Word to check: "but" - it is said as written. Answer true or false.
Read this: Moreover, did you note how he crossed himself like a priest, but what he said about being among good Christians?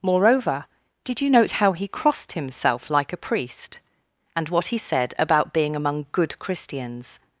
false